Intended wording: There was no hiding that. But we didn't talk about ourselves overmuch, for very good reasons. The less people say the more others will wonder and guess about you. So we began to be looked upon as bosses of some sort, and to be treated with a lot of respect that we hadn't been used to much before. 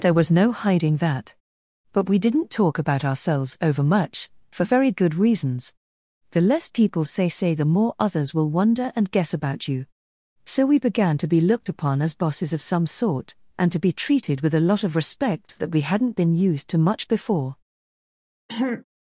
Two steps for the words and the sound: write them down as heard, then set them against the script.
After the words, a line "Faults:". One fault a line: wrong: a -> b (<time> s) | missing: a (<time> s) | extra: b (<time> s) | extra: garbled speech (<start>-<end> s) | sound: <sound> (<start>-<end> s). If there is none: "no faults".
There was no hiding that. But we didn't talk about ourselves overmuch, for very good reasons. The less people say say the more others will wonder and guess about you. So we began to be looked upon as bosses of some sort, and to be treated with a lot of respect that we hadn't been used to much before.
Faults:
extra: say (7.3 s)
sound: throat clearing (18.5-18.8 s)